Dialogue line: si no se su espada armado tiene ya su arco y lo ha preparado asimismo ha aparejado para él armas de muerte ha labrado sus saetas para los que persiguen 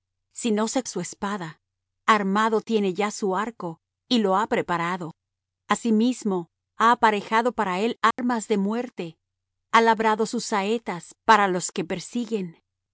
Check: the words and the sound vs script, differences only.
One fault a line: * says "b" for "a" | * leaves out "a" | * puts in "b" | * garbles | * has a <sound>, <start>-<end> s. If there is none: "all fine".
* has a dropout, 8.1-8.2 s